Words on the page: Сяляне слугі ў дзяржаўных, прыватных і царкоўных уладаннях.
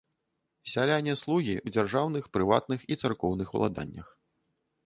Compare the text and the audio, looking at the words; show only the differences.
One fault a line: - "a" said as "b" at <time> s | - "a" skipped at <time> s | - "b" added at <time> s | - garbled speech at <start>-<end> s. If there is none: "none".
none